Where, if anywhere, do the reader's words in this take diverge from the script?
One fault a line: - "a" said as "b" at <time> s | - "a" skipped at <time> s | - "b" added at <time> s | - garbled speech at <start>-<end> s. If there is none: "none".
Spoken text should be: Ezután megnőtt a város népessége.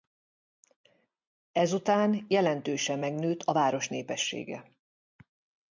- "jelentősen" added at 2.3 s